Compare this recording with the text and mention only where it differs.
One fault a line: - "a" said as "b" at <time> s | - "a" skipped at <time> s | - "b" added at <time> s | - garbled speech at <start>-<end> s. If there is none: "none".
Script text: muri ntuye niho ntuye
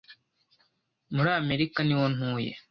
- "ntuye" said as "amerika" at 1.4 s